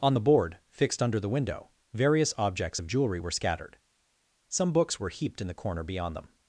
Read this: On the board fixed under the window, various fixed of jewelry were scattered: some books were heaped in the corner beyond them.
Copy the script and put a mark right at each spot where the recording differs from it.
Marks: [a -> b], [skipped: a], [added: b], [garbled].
On the board fixed under the window, various [fixed -> objects] of jewelry were scattered: some books were heaped in the corner beyond them.